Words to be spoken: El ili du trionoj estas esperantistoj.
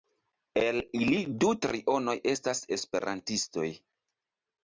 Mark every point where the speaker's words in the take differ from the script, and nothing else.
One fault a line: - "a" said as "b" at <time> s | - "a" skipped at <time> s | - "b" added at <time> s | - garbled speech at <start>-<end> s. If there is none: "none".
none